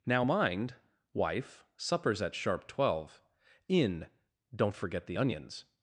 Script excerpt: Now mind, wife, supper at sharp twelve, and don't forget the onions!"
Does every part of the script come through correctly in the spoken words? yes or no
no